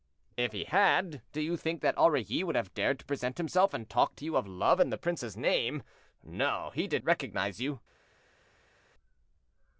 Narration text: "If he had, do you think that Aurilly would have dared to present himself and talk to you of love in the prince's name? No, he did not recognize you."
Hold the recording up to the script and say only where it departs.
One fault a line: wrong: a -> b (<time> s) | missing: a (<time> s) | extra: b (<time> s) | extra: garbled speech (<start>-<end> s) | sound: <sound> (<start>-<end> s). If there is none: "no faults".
missing: not (7.0 s)